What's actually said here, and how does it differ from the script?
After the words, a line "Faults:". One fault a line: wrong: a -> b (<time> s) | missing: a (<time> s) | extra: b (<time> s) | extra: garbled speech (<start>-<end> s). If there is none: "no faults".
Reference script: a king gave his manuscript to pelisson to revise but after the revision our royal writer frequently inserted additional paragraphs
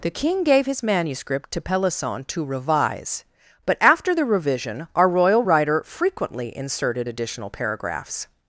the king gave his manuscript to pelisson to revise but after the revision our royal writer frequently inserted additional paragraphs
Faults:
wrong: a -> the (0.0 s)